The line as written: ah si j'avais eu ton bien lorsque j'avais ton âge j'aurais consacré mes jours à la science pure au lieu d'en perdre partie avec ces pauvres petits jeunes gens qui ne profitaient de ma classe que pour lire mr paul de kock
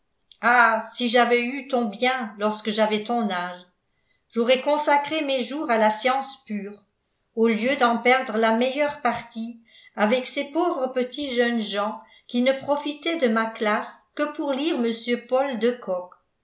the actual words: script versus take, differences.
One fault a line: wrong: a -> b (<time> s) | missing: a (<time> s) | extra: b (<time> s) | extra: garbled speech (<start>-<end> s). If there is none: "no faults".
extra: la meilleure (8.4 s)